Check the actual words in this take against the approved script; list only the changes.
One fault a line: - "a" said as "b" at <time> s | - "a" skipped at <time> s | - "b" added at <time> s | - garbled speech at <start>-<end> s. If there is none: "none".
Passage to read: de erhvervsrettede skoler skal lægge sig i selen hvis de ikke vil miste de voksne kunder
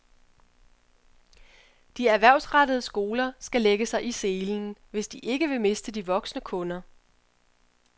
none